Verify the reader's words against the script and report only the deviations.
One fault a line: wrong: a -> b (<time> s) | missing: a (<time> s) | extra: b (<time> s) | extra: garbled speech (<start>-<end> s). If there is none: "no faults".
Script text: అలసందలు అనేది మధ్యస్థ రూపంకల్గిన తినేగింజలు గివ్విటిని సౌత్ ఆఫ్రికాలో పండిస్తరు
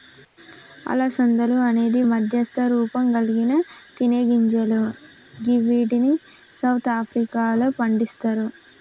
no faults